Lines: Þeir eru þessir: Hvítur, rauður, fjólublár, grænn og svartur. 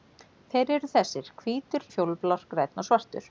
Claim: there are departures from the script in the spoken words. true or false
true